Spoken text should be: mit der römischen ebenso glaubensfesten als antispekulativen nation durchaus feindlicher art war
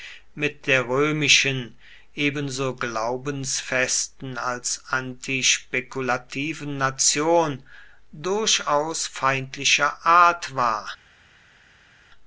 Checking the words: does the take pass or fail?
pass